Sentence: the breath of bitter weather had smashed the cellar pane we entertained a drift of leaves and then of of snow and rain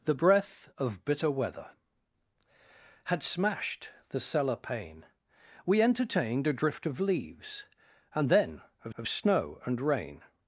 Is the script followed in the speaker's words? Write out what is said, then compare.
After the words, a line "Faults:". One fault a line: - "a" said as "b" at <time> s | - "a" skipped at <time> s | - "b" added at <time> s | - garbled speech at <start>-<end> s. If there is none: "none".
the breath of bitter weather had smashed the cellar pane we entertained a drift of leaves and then of of snow and rain
Faults:
none